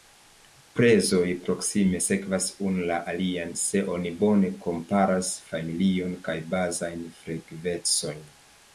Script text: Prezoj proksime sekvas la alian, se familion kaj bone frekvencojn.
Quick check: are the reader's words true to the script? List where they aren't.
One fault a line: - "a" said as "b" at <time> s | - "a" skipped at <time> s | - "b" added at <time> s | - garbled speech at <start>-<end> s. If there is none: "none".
- "unu" added at 2.7 s
- "oni bone komparas" added at 4.0 s
- "bone" said as "bazajn" at 6.6 s